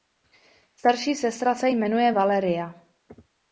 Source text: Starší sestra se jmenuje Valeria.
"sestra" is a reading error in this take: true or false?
false